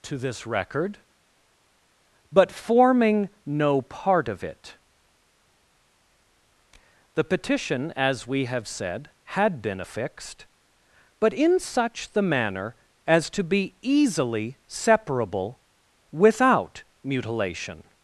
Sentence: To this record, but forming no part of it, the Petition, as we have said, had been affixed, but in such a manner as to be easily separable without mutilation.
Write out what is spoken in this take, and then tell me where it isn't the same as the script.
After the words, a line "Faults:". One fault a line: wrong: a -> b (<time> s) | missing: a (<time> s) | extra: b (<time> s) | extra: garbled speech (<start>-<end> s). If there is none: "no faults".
To this record, but forming no part of it, the Petition, as we have said, had been affixed, but in such the manner as to be easily separable without mutilation.
Faults:
wrong: a -> the (12.1 s)